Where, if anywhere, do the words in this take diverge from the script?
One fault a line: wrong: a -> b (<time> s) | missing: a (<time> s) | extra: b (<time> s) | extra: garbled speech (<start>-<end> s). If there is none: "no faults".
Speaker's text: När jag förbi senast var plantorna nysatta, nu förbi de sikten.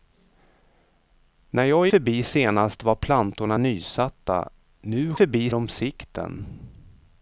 no faults